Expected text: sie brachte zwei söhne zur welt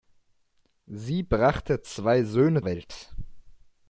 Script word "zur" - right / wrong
wrong